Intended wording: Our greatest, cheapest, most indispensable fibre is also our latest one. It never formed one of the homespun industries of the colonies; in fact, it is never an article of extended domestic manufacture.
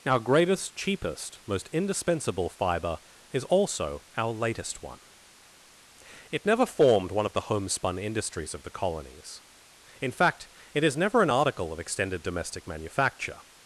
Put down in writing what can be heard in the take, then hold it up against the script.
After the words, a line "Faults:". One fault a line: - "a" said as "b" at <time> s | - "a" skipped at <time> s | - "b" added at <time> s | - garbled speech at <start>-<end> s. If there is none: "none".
Our greatest, cheapest, most indispensable fibre is also our latest one. It never formed one of the homespun industries of the colonies; in fact, it is never an article of extended domestic manufacture.
Faults:
none